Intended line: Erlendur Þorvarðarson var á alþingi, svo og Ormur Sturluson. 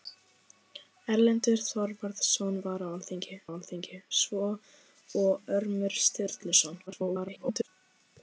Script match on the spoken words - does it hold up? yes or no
no